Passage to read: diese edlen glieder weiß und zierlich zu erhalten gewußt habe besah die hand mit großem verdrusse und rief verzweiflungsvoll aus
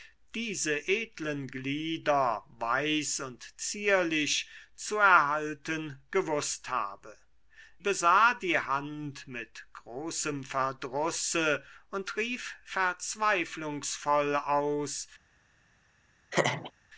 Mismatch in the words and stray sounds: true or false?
true